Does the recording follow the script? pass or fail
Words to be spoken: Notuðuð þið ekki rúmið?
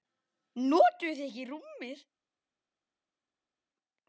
pass